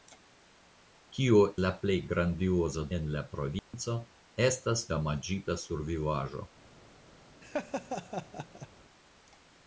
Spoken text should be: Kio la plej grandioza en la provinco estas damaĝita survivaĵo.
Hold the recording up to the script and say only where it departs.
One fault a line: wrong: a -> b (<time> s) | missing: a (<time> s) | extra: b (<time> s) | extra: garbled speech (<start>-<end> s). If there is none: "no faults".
no faults